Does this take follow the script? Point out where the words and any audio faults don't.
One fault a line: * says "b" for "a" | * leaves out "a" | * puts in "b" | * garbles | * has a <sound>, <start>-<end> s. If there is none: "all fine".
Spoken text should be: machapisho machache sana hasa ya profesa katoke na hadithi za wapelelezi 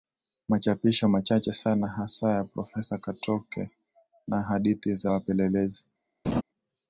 * has a laugh, 6.2-6.4 s